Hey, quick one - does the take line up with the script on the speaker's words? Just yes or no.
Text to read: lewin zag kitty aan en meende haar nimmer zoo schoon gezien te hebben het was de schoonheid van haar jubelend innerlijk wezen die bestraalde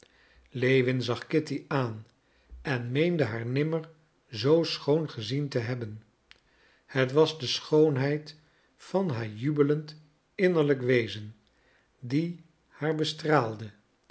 no